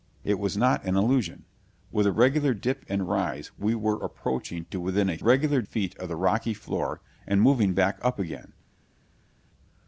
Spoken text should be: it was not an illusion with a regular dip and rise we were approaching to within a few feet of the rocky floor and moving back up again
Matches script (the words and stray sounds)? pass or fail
fail